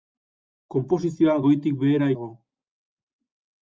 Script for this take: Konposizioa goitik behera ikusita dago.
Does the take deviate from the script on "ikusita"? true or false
true